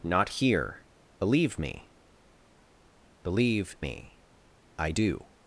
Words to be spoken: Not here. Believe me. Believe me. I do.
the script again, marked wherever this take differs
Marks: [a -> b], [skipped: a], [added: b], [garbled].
Not here. Believe me. Believe me. I do.